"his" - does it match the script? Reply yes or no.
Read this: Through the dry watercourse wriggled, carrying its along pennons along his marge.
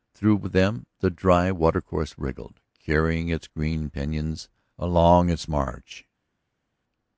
no